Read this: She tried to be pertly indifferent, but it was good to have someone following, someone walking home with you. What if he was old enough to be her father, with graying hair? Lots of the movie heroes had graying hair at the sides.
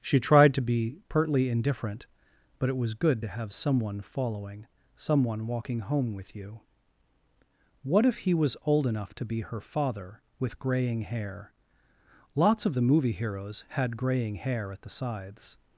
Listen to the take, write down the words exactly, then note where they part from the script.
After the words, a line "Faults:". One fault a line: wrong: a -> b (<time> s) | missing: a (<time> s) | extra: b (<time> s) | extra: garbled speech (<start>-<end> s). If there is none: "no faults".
She tried to be pertly indifferent, but it was good to have someone following, someone walking home with you. What if he was old enough to be her father, with graying hair? Lots of the movie heroes had graying hair at the sides.
Faults:
no faults